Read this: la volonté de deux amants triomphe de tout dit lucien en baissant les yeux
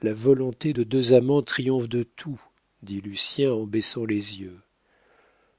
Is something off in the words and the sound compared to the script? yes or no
no